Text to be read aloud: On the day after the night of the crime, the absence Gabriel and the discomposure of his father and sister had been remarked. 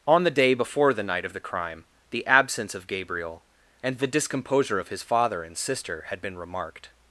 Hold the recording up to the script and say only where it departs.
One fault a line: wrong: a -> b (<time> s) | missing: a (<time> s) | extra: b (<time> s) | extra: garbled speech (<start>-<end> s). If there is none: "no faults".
wrong: after -> before (0.5 s)
extra: of (2.7 s)